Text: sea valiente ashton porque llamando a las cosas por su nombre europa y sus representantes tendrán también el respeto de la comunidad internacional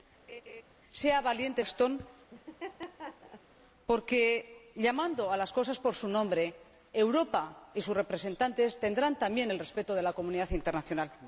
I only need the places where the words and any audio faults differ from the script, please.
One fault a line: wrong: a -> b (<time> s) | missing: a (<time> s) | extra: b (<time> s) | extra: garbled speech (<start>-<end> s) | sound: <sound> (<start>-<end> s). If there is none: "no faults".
sound: laugh (0.3-0.6 s)
sound: laugh (2.3-3.5 s)